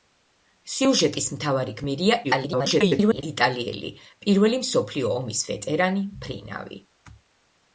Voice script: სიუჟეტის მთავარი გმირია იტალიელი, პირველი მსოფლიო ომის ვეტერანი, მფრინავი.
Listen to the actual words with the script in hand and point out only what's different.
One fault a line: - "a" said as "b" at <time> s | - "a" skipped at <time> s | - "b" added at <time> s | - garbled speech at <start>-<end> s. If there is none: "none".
- garbled speech at 2.2-3.2 s